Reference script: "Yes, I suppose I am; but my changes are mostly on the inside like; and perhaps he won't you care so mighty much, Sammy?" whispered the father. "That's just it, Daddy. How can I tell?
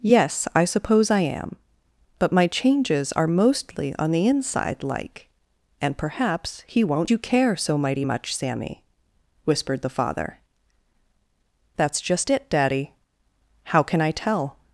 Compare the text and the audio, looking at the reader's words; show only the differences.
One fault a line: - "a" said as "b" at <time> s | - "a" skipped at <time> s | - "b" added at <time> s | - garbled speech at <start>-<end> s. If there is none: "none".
none